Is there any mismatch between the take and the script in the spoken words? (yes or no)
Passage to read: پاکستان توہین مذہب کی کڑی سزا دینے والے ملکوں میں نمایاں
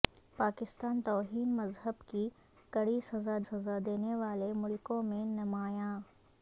yes